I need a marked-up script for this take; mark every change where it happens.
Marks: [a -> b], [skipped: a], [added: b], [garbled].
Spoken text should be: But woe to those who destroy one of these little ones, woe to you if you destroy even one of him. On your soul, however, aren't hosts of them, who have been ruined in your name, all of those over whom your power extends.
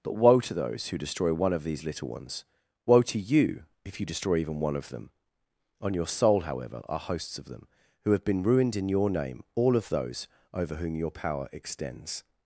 But woe to those who destroy one of these little ones, woe to you if you destroy even one of [him. -> them] On your soul, however, [aren't -> are] hosts of them, who have been ruined in your name, all of those over whom your power extends.